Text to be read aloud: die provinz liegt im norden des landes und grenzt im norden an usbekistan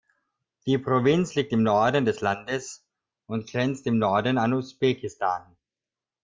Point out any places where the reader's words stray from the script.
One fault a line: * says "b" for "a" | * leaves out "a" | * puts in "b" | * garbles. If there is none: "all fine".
all fine